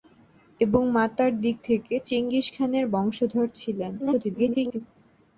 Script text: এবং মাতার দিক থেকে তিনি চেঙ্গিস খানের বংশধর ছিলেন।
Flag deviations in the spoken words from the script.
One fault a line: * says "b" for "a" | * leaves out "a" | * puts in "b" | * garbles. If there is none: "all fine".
* leaves out "তিনি"
* garbles